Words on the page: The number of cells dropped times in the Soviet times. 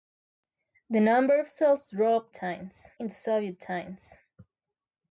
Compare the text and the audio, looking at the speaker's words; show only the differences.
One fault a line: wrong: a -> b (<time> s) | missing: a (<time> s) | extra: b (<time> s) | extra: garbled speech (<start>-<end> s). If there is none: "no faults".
no faults